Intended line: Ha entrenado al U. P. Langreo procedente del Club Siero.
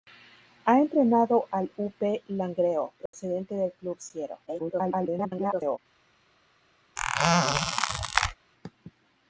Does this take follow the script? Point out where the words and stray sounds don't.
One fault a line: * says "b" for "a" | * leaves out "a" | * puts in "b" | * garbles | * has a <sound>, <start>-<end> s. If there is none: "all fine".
* has a dropout, 3.1-3.1 s
* garbles
* has a squeak, 7.0-8.3 s